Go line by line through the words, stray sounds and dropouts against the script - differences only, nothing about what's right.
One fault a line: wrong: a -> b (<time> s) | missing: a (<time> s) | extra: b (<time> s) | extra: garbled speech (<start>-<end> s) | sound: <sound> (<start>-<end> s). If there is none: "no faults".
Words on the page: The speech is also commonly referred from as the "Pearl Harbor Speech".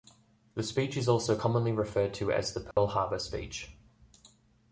wrong: from -> to (2.1 s)
sound: dropout (2.7-2.8 s)